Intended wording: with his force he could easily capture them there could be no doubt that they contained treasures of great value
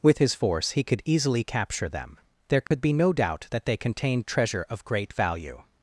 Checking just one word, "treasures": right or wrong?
wrong